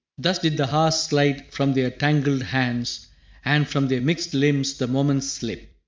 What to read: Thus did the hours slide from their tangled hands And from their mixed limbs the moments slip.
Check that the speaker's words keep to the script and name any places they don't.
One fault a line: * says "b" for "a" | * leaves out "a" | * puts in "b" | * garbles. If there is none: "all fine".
all fine